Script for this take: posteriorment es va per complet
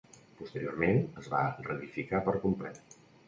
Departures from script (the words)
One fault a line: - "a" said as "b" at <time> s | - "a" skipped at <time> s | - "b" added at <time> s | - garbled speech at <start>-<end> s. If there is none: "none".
- "reedificar" added at 1.7 s